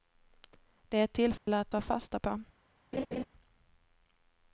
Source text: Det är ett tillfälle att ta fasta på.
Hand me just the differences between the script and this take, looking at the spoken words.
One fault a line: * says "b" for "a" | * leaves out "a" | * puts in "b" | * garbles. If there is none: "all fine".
all fine